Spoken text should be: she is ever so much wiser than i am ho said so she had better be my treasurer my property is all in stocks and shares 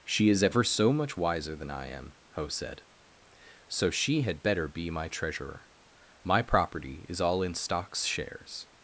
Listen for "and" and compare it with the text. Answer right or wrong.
wrong